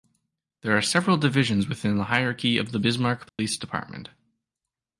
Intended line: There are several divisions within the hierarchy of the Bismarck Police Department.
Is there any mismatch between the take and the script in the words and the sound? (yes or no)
yes